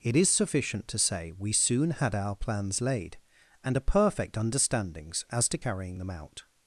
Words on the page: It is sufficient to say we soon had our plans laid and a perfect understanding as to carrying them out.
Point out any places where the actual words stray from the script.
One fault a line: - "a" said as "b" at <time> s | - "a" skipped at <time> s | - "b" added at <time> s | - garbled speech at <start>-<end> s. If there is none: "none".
- "understanding" said as "understandings" at 4.3 s